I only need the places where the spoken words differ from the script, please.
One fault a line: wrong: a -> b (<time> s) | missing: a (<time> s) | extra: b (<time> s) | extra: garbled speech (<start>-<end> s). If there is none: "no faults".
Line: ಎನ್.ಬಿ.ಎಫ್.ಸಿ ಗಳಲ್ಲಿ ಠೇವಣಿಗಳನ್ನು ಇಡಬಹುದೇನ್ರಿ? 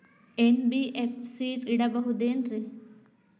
missing: ಗಳಲ್ಲಿ ಠೇವಣಿಗಳನ್ನು (1.5 s)